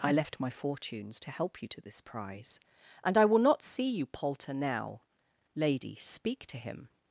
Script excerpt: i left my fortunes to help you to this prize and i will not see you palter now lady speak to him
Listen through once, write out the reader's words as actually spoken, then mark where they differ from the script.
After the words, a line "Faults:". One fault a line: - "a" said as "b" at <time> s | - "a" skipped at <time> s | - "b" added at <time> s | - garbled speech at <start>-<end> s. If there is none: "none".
i left my fortunes to help you to this prize and i will not see you palter now lady speak to him
Faults:
none